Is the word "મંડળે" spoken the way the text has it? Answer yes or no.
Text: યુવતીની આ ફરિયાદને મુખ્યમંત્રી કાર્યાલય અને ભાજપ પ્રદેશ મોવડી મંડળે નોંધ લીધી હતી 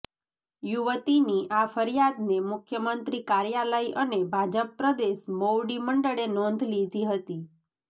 yes